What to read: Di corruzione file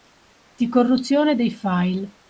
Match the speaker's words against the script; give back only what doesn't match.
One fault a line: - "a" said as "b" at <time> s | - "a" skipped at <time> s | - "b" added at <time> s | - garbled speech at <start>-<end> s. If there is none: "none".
- "dei" added at 1.4 s